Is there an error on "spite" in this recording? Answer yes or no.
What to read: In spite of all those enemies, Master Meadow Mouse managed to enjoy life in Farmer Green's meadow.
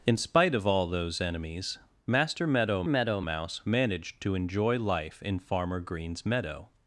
no